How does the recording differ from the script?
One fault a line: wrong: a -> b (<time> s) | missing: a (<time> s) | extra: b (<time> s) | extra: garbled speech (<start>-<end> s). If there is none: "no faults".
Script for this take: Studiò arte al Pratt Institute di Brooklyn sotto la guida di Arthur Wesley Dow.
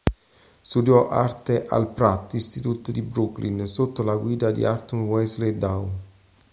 no faults